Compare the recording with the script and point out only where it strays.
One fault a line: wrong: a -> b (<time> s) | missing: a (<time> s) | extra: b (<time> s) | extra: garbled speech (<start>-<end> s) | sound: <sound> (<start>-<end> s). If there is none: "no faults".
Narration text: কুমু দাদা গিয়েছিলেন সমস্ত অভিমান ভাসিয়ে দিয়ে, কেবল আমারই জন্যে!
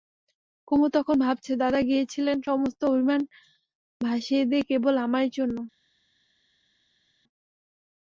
extra: তখন ভাবছে (0.9 s)